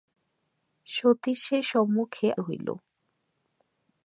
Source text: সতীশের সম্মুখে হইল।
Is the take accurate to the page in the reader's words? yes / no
yes